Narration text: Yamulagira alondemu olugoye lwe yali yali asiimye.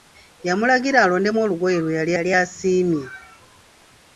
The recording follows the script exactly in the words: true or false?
true